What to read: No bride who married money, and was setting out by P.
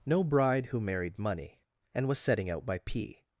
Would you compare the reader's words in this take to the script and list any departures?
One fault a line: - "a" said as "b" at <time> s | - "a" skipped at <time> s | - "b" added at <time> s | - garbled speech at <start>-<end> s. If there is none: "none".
none